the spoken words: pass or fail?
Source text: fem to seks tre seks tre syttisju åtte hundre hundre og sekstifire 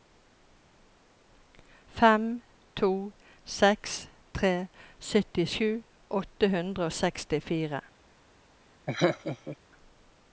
fail